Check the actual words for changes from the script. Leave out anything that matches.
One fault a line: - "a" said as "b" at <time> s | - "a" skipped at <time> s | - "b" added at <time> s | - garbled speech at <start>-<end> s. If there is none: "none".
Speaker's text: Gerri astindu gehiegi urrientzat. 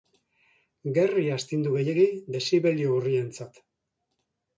- "dezibelio" added at 2.4 s